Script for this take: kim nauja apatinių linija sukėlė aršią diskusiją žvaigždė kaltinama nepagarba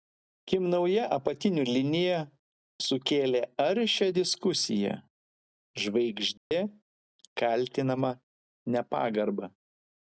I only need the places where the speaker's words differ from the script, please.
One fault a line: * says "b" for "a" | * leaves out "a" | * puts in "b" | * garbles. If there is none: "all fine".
all fine